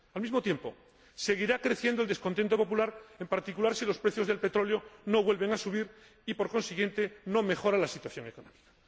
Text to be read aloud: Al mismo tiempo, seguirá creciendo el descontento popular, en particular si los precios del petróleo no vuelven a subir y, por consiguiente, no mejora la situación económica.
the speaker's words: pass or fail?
pass